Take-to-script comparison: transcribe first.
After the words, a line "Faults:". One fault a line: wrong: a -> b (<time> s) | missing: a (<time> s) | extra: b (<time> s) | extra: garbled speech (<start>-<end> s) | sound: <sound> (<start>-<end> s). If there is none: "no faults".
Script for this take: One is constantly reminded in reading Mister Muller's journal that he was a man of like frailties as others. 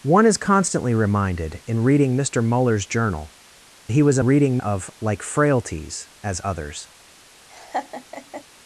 One is constantly reminded in reading Mister Muller's journal he was a reading of like frailties as others.
Faults:
missing: that (3.4 s)
wrong: man -> reading (4.2 s)
sound: laugh (7.5-8.4 s)